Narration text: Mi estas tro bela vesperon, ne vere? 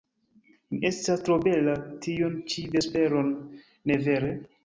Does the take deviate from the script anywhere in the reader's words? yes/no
yes